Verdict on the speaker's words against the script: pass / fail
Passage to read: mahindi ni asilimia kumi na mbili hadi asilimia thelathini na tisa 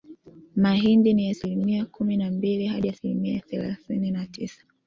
pass